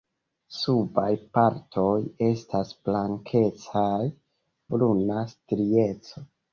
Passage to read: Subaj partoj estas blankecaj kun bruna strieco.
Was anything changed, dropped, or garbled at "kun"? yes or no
yes